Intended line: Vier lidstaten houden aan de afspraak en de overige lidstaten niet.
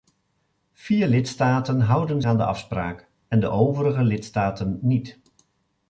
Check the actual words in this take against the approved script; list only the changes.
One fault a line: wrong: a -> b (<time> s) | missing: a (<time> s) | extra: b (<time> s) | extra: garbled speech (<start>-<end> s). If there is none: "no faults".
no faults